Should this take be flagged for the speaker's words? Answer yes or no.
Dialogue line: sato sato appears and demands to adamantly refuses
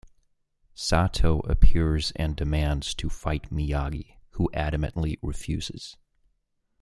yes